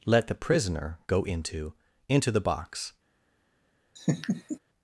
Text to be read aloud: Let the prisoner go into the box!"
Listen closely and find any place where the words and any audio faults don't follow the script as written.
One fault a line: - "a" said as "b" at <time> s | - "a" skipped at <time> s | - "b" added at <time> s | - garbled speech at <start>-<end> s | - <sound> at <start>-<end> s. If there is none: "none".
- "into" added at 2.1 s
- laugh at 4.0-4.6 s